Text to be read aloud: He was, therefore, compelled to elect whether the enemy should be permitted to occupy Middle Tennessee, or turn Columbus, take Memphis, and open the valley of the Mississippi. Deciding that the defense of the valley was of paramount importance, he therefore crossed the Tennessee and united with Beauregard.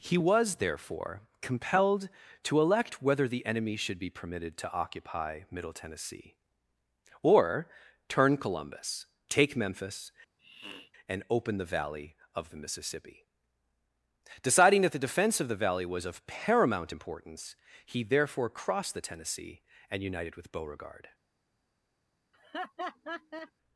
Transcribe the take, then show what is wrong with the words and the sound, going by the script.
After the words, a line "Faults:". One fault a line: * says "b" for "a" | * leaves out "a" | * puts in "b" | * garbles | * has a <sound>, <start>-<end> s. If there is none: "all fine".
He was, therefore, compelled to elect whether the enemy should be permitted to occupy Middle Tennessee, or turn Columbus, take Memphis, and open the valley of the Mississippi. Deciding that the defense of the valley was of paramount importance, he therefore crossed the Tennessee and united with Beauregard.
Faults:
* has a sniff, 10.4-10.9 s
* has a laugh, 22.3-23.5 s